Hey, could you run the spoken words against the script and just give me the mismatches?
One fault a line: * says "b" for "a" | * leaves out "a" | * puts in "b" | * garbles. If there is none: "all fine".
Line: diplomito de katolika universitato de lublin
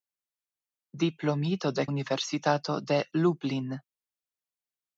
* leaves out "katolika"